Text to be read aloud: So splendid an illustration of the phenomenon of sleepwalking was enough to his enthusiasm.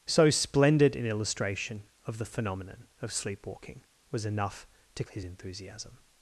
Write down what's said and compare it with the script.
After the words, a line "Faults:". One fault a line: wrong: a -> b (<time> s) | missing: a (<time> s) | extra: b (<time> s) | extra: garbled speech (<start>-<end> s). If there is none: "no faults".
So splendid an illustration of the phenomenon of sleepwalking was enough to his enthusiasm.
Faults:
no faults